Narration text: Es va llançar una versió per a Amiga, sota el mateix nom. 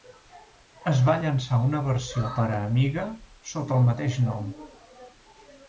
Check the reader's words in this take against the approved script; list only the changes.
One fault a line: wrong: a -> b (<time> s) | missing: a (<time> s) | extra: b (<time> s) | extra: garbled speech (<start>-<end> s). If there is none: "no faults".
no faults